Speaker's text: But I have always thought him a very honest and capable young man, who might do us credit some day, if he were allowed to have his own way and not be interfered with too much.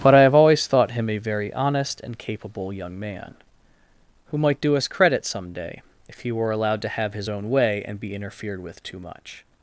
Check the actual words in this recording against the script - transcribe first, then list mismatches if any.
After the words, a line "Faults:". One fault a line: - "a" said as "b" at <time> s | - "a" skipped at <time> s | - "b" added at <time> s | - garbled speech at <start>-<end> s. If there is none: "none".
But I have always thought him a very honest and capable young man, who might do us credit some day, if he were allowed to have his own way and be interfered with too much.
Faults:
- "not" skipped at 8.0 s